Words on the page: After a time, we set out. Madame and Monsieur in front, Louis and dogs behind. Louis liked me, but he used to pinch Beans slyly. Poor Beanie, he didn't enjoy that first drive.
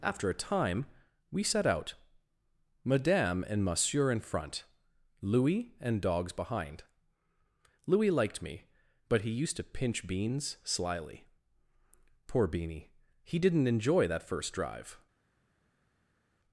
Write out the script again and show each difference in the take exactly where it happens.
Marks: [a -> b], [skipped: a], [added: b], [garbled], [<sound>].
After a time, we set out. Madame and Monsieur in front, Louis and dogs behind. Louis liked me, but he used to pinch Beans slyly. Poor Beanie, he didn't enjoy that first drive.